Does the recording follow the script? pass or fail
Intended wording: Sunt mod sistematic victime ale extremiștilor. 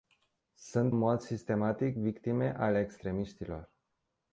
pass